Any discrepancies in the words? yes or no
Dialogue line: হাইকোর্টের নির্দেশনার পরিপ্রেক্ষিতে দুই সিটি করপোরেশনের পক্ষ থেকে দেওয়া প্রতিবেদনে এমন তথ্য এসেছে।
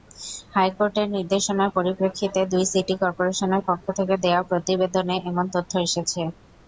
no